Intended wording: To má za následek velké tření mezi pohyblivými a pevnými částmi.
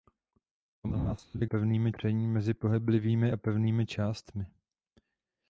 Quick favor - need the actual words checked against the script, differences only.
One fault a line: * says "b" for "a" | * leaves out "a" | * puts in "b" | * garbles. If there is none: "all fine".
* leaves out "má"
* says "pevnými" for "velké"